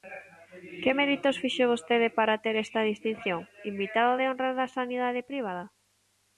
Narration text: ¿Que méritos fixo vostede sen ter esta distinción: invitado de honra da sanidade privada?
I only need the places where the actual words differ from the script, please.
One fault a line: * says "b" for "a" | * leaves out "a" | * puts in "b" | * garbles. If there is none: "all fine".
* says "para" for "sen"